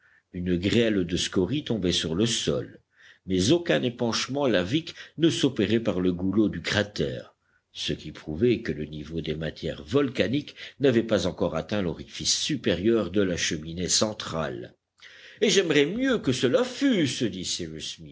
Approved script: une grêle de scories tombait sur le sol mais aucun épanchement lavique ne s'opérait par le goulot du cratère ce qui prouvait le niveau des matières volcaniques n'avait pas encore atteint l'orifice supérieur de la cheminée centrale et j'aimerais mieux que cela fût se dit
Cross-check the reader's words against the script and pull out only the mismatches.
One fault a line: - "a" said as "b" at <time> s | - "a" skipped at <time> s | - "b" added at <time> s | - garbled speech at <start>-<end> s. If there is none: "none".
- "que" added at 8.6 s